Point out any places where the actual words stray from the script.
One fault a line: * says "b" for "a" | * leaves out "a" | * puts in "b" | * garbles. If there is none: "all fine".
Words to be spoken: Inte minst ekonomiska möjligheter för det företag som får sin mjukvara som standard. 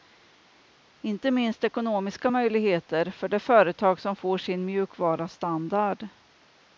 * leaves out "som"